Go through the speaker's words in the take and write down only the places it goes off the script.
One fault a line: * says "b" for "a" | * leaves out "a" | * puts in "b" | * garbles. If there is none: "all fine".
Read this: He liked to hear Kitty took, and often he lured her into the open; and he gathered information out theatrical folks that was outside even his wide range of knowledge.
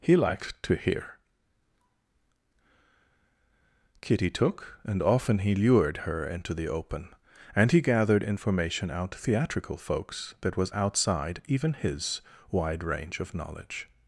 all fine